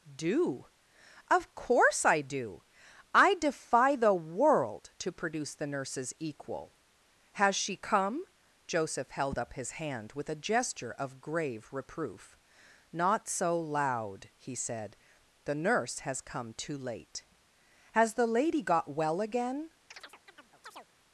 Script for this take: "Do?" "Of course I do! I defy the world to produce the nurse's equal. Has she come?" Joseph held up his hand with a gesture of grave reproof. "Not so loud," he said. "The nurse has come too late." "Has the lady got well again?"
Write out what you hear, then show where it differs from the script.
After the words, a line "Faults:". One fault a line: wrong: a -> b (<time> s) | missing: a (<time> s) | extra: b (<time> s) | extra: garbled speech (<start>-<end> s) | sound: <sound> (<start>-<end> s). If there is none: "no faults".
"Do?" "Of course I do! I defy the world to produce the nurse's equal. Has she come?" Joseph held up his hand with a gesture of grave reproof. "Not so loud," he said. "The nurse has come too late." "Has the lady got well again?"
Faults:
sound: chirp (19.9-20.9 s)